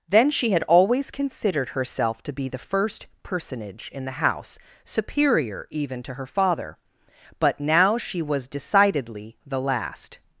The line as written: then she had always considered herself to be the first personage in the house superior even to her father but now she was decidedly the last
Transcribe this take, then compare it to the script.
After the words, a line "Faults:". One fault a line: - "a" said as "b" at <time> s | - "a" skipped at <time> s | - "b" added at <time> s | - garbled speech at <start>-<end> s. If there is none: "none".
then she had always considered herself to be the first personage in the house superior even to her father but now she was decidedly the last
Faults:
none